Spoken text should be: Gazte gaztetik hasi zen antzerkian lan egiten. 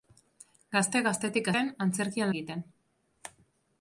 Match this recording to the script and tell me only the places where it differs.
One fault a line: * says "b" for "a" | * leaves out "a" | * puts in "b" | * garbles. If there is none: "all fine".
* leaves out "hasi"
* leaves out "lan"